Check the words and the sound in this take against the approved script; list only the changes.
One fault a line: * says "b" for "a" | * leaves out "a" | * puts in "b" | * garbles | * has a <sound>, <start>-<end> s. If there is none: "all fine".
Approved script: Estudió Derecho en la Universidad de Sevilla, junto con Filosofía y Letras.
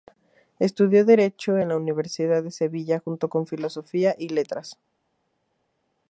all fine